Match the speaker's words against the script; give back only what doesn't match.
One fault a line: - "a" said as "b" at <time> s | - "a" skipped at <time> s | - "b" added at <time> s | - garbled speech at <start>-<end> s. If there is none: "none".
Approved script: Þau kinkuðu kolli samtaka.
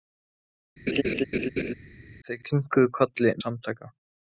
none